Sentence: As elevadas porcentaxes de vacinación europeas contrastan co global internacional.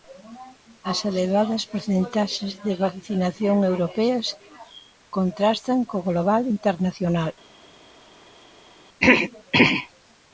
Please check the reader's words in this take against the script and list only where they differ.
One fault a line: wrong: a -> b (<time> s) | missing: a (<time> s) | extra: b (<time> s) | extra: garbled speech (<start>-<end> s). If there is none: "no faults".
no faults